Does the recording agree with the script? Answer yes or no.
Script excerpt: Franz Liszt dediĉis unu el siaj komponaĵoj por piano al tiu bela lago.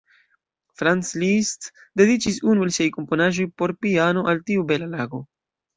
yes